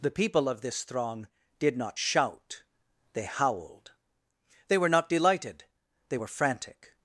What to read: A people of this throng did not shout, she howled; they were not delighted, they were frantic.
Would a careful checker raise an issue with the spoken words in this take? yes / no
yes